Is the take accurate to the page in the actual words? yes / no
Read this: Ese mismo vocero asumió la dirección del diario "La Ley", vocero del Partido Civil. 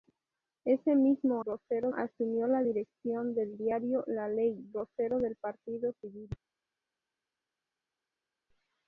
yes